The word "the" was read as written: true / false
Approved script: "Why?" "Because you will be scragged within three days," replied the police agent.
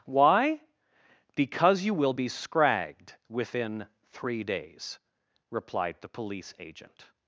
true